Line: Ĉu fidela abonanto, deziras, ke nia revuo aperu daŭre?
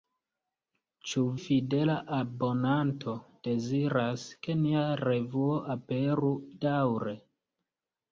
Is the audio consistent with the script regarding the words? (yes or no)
yes